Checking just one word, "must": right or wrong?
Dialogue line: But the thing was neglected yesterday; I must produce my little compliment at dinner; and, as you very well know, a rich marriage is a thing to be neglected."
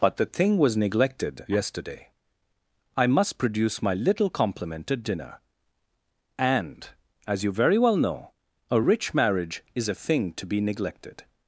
right